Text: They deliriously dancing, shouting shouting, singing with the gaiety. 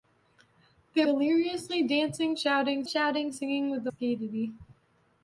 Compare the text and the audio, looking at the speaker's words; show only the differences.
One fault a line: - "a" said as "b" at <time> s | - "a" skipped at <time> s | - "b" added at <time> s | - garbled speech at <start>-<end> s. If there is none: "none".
none